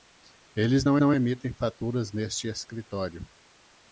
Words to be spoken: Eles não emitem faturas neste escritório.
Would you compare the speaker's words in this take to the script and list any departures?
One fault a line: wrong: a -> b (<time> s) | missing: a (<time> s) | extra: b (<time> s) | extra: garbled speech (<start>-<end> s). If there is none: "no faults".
extra: não (1.0 s)